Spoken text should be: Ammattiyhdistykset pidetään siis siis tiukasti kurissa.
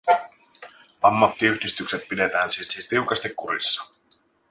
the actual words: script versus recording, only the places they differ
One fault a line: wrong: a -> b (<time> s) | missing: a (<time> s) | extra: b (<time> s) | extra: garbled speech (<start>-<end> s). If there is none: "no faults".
no faults